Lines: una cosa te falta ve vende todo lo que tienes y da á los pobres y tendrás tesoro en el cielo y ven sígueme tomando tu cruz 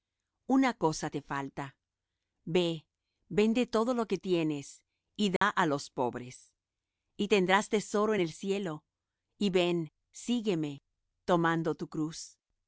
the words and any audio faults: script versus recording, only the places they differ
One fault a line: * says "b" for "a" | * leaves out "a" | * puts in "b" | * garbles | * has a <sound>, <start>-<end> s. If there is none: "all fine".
* has a dropout, 5.4-5.4 s